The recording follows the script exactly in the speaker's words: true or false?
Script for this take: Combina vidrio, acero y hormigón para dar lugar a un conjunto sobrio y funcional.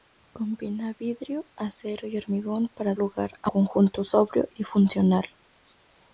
false